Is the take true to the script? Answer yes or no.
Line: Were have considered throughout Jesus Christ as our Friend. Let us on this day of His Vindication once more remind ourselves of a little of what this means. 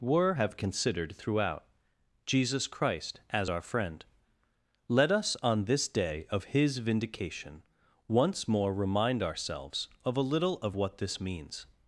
yes